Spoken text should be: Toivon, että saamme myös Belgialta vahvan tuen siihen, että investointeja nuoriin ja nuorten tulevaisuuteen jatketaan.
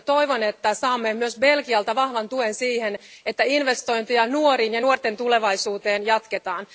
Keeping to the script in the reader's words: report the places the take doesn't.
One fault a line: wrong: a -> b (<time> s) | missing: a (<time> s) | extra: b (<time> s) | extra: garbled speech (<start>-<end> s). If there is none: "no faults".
no faults